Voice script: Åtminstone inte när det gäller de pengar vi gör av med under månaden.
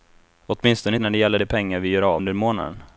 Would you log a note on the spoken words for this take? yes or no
yes